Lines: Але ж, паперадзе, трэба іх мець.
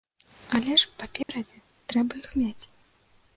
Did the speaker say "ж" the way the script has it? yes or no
yes